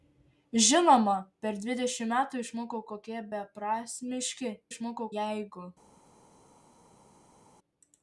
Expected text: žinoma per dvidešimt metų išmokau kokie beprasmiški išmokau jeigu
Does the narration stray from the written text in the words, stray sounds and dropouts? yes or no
no